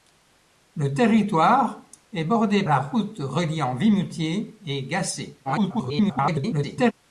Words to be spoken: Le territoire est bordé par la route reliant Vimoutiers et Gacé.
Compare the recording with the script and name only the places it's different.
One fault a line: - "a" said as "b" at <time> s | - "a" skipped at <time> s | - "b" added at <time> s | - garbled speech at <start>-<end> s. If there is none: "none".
- "par" skipped at 2.6 s
- garbled speech at 5.4-6.9 s